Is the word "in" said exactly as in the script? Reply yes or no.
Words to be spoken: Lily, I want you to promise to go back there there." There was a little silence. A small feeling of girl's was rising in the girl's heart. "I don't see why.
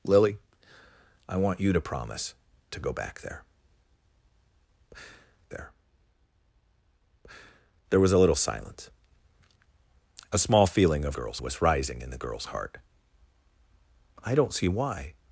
yes